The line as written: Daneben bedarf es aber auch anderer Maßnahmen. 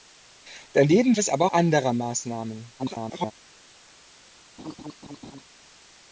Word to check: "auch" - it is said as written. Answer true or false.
false